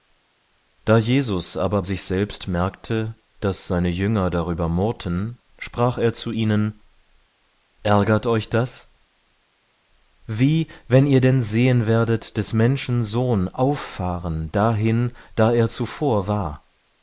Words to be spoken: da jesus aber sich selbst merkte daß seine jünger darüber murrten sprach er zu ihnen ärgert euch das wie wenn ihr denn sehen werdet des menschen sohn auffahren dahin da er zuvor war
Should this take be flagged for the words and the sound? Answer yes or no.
no